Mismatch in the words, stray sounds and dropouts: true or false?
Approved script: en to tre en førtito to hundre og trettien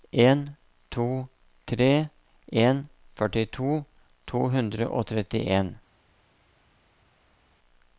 false